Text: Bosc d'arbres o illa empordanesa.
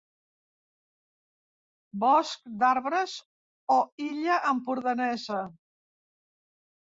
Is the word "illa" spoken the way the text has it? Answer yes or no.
yes